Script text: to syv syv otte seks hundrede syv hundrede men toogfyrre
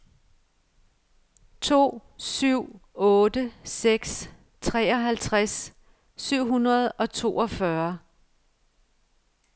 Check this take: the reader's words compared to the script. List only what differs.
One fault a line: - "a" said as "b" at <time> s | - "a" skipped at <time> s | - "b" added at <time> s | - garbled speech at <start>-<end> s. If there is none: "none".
- "syv" skipped at 2.8 s
- "hundrede" said as "treoghalvtreds" at 4.6 s
- "men" said as "og" at 6.9 s